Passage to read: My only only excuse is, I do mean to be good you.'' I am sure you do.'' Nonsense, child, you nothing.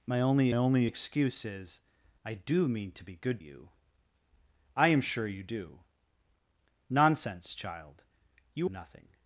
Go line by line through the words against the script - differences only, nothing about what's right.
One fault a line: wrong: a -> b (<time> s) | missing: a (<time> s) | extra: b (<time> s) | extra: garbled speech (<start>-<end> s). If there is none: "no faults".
no faults